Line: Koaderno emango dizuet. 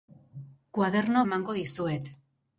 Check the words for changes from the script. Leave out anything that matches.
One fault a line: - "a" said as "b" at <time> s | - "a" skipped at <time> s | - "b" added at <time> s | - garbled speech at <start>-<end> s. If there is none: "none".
none